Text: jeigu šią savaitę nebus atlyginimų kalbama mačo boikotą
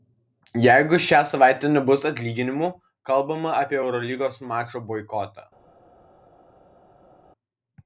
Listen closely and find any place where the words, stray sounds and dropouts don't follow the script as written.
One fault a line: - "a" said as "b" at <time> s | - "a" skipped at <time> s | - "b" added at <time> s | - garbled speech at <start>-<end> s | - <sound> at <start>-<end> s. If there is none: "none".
- "apie eurolygos" added at 3.6 s